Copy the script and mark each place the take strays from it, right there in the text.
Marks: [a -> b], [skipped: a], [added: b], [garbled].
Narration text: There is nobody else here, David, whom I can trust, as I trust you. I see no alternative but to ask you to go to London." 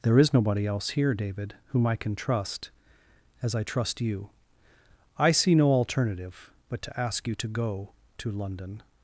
There is nobody else here, David, whom I can trust, as I trust you. I see no alternative but to ask you to go to London."